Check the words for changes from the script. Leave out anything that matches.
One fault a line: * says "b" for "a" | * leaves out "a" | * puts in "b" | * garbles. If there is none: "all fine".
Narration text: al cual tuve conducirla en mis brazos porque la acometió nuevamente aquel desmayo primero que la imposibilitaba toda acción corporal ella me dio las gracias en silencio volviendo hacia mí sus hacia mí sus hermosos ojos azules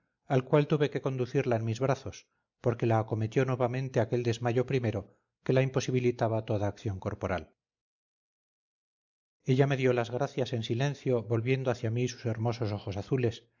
* puts in "que"
* leaves out "hacia mí sus"